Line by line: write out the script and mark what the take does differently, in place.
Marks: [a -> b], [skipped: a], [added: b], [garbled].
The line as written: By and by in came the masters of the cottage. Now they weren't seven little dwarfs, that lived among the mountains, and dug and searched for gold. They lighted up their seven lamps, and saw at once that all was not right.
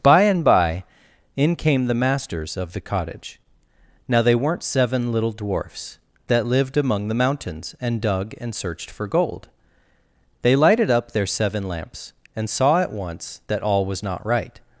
By and by in came the masters of the cottage. Now they weren't seven little dwarfs, that lived among the mountains, and dug and searched for gold. They lighted up their seven lamps, and saw at once that all was not right.